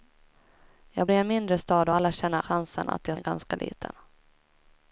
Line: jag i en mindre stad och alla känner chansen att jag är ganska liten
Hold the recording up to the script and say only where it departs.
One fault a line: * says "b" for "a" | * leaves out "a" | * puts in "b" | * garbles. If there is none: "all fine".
all fine